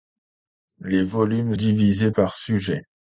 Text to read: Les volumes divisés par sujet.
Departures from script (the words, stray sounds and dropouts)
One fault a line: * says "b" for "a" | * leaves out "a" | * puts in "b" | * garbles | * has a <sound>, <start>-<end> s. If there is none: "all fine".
all fine